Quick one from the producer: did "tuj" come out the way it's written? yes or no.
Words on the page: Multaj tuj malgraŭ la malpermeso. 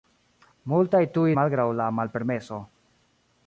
yes